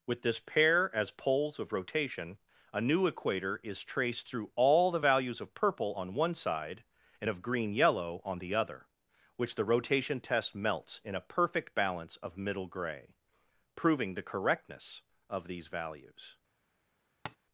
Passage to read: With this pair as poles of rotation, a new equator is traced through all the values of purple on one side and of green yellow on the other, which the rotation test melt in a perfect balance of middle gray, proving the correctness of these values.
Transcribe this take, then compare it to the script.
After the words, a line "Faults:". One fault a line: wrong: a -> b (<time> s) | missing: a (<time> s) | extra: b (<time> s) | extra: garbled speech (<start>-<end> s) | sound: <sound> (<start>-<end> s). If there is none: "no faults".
With this pair as poles of rotation, a new equator is traced through all the values of purple on one side and of green yellow on the other, which the rotation test melts in a perfect balance of middle gray, proving the correctness of these values.
Faults:
wrong: melt -> melts (10.5 s)
sound: tap (17.3-17.4 s)